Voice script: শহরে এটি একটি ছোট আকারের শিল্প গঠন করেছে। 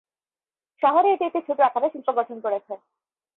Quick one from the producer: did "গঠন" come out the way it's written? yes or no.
yes